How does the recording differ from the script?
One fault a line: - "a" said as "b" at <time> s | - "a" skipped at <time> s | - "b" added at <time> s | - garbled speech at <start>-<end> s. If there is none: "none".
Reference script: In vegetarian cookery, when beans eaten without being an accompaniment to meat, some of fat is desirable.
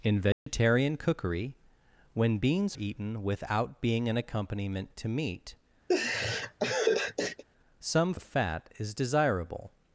none